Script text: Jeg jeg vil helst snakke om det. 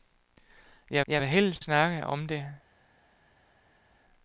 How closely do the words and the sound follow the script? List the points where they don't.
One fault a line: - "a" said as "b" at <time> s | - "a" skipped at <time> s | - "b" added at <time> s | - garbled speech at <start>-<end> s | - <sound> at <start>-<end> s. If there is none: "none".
none